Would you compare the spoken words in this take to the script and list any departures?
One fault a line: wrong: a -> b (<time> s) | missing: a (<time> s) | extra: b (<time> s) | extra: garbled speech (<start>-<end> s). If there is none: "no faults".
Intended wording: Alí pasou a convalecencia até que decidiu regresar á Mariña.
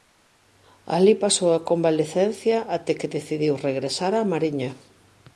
no faults